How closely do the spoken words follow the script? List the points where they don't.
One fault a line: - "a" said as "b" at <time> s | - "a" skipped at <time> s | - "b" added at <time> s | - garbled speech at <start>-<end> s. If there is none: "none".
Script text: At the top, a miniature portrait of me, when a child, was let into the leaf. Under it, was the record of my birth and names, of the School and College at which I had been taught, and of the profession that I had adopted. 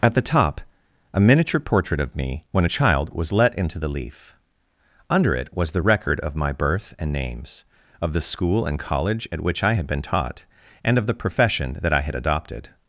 none